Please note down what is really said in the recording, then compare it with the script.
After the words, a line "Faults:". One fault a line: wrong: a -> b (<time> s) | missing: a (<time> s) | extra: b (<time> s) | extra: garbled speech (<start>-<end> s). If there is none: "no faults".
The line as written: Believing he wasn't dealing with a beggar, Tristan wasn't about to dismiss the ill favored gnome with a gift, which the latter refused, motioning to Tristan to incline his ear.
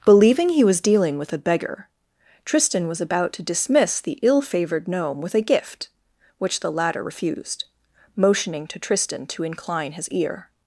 Believing he was dealing with a beggar, Tristan was about to dismiss the ill favored gnome with a gift, which the latter refused, motioning to Tristan to incline his ear.
Faults:
wrong: wasn't -> was (0.6 s)
wrong: wasn't -> was (2.9 s)